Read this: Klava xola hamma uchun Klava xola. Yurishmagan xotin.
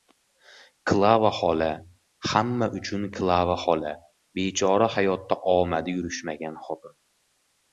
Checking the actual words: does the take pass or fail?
fail